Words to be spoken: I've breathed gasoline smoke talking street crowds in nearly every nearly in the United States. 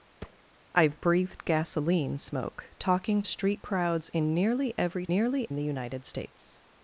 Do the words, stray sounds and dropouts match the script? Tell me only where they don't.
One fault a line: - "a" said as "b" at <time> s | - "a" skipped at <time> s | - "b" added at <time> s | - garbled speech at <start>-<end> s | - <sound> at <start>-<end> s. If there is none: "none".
- thud at 0.2-0.4 s